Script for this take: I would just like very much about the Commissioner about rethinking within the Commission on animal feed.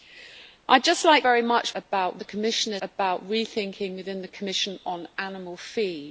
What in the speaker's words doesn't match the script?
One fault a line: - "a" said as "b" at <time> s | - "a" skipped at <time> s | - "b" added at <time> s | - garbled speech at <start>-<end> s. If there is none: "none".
none